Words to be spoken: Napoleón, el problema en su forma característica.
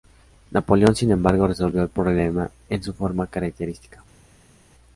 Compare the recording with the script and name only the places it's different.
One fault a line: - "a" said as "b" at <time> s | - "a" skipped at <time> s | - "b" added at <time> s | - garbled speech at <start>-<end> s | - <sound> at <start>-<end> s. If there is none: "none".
- "sin embargo resolvió" added at 0.9 s